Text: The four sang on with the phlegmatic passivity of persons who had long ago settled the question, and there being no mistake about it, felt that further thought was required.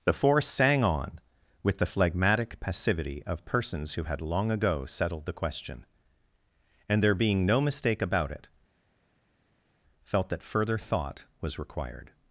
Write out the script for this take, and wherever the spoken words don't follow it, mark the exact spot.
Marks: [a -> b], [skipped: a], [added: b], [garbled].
The four sang on with the phlegmatic passivity of persons who had long ago settled the question, and there being no mistake about it, felt that further thought was required.